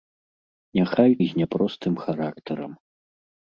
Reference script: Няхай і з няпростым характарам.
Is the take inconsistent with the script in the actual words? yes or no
no